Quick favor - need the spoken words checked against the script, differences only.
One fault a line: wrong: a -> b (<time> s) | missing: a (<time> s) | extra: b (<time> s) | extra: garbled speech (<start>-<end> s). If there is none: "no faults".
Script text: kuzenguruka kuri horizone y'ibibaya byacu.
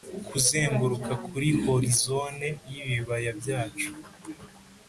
no faults